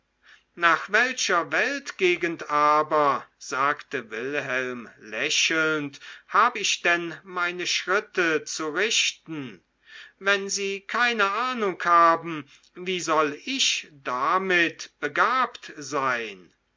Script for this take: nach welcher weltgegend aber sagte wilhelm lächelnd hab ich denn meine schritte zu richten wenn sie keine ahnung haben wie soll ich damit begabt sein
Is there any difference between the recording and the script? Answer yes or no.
no